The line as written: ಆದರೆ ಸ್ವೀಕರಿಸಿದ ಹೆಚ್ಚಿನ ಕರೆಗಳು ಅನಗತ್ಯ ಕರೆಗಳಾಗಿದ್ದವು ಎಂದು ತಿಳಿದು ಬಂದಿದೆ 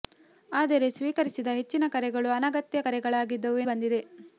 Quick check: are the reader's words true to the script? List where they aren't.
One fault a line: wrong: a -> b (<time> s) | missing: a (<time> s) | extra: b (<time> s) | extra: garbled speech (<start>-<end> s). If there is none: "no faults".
missing: ಎಂದು ತಿಳಿದು (3.6 s)